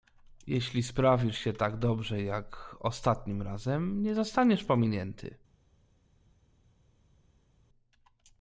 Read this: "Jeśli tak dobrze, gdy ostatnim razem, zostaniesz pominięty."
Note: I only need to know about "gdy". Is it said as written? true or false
false